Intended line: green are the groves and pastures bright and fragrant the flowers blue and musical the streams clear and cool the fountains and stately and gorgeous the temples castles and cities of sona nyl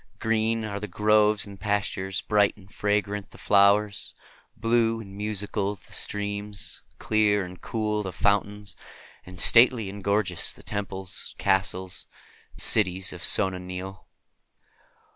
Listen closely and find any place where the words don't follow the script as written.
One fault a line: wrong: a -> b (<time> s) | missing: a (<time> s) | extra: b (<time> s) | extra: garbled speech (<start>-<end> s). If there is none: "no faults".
no faults